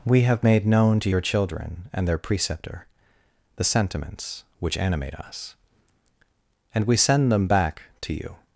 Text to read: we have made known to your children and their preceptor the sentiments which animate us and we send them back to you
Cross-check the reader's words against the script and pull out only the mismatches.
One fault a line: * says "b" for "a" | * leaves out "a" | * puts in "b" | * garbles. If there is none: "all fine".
all fine